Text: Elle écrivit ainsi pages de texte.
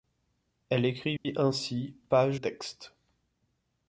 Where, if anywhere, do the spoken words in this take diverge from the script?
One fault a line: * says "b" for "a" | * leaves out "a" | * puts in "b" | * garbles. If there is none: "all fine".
* leaves out "de"